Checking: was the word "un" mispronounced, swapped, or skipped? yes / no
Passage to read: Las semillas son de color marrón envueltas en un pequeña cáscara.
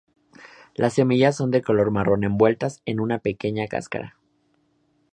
yes